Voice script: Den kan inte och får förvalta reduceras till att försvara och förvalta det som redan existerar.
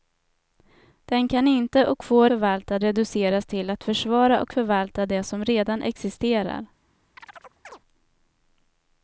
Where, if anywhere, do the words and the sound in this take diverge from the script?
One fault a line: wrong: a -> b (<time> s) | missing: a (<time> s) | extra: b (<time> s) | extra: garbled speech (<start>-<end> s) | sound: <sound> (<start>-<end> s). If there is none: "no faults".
sound: chirp (7.2-7.8 s)